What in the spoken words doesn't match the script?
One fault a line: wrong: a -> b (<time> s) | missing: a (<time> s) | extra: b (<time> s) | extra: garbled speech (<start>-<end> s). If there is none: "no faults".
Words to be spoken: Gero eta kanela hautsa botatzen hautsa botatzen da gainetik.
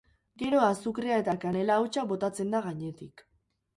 extra: azukrea (0.7 s)
missing: hautsa botatzen (2.6 s)